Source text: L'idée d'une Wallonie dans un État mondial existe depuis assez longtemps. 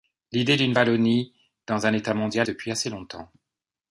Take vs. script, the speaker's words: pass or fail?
fail